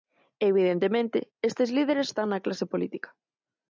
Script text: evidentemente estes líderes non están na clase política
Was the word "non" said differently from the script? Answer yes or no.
yes